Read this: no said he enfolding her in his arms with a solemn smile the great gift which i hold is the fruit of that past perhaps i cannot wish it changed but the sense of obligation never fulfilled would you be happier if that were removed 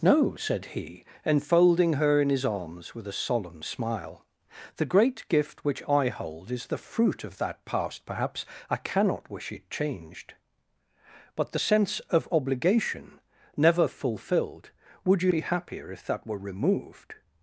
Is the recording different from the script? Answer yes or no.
no